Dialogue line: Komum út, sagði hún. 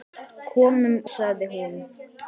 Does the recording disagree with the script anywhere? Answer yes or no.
yes